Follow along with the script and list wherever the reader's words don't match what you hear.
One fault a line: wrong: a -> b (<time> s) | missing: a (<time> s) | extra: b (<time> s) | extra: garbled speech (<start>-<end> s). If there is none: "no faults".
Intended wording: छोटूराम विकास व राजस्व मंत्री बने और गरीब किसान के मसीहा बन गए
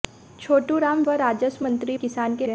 missing: विकास (1.0 s)
missing: बने और गरीब (2.0 s)
missing: मसीहा बन (2.5 s)